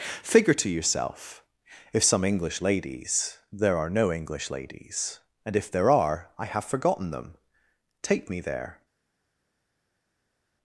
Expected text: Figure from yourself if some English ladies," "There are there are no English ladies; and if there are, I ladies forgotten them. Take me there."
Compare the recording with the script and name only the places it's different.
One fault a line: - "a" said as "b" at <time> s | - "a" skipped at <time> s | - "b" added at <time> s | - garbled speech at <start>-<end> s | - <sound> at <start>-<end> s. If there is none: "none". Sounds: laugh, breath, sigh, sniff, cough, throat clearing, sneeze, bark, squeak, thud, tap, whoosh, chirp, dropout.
- "from" said as "to" at 0.5 s
- "there are" skipped at 3.9 s
- "ladies" said as "have" at 6.5 s